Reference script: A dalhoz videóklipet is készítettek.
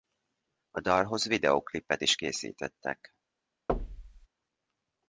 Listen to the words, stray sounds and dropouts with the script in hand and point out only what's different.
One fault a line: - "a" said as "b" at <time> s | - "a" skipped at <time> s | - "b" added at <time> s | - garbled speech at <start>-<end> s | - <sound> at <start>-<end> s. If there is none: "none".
- thud at 3.7-4.3 s